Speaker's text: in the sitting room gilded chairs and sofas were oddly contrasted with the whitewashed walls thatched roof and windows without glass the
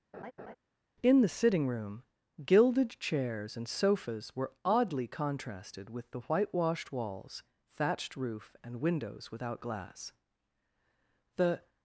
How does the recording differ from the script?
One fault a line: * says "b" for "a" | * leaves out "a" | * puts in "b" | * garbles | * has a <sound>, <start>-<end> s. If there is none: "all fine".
* has a laugh, 0.1-0.6 s